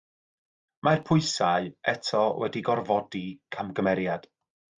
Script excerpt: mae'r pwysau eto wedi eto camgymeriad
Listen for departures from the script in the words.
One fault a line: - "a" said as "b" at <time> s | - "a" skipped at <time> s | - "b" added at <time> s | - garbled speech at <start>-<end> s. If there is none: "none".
- "eto" said as "gorfodi" at 2.7 s